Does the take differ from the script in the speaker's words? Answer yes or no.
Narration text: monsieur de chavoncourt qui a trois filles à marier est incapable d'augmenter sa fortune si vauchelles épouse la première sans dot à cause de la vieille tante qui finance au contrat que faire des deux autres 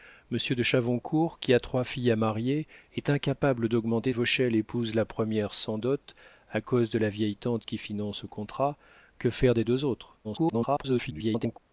yes